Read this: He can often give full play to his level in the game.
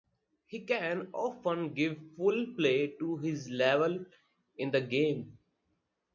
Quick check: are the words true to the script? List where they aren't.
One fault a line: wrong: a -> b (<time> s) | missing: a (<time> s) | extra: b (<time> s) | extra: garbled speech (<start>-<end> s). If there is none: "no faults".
no faults